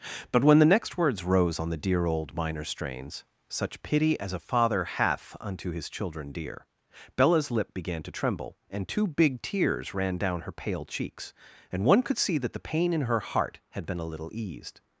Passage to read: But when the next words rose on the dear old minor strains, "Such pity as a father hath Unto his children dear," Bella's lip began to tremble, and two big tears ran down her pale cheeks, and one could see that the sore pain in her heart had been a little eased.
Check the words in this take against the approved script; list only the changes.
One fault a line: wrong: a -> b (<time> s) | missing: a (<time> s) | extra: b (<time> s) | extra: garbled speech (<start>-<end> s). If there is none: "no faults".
missing: sore (12.7 s)